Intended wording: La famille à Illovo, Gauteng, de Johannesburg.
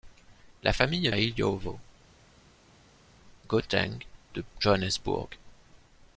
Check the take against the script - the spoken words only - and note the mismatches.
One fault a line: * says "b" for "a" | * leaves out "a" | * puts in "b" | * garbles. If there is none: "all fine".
all fine